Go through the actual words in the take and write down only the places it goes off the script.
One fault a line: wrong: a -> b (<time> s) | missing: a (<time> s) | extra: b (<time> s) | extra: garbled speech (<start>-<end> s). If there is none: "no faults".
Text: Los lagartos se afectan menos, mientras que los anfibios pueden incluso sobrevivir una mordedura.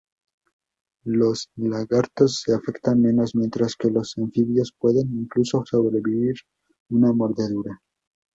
no faults